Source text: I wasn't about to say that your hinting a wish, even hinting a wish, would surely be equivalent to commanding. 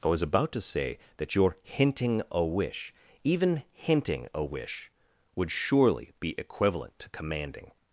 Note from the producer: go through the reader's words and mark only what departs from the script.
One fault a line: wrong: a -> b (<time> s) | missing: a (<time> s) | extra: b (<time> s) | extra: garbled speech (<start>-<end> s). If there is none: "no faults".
wrong: wasn't -> was (0.1 s)